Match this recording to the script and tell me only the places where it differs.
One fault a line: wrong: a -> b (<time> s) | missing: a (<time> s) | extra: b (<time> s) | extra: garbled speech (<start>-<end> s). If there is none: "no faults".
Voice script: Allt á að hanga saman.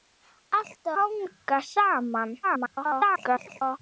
missing: að (0.9 s)
extra: garbled speech (2.4-3.8 s)